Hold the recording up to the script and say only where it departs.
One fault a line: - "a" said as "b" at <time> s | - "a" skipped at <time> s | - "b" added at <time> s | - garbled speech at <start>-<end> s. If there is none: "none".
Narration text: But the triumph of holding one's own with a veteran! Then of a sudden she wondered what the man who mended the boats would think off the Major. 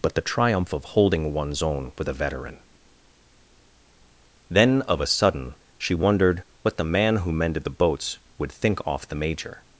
none